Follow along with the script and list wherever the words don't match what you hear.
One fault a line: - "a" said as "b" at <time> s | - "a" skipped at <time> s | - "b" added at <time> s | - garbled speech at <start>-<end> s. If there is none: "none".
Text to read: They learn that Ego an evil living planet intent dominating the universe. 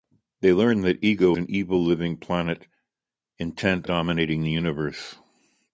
none